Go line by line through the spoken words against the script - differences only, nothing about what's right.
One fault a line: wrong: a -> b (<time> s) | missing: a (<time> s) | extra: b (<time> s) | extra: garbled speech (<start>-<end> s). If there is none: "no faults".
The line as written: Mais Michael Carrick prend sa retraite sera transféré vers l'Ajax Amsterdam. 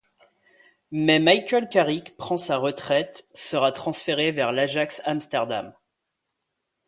no faults